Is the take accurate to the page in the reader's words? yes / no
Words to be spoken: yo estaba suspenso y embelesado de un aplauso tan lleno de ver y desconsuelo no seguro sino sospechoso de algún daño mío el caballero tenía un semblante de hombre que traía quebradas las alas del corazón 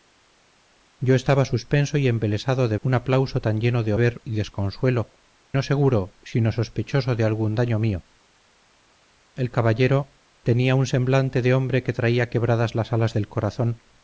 yes